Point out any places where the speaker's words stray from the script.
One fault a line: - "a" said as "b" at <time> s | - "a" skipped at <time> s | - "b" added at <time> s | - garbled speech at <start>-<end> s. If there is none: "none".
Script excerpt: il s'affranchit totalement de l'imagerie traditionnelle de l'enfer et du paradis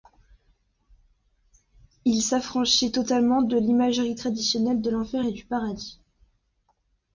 none